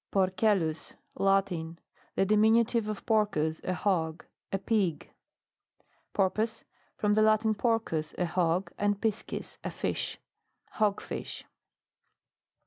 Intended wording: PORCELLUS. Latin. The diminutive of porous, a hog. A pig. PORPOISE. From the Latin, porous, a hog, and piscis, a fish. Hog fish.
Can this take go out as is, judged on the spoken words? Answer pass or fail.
pass